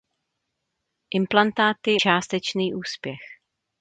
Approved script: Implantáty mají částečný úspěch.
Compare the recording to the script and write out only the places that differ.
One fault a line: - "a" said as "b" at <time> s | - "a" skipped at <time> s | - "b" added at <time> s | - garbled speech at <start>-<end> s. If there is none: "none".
- "mají" skipped at 2.0 s